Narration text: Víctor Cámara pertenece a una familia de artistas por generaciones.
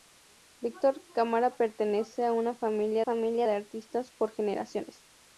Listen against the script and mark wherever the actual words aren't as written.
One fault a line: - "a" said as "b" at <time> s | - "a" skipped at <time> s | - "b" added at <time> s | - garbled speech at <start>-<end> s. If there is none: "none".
- "familia" added at 3.0 s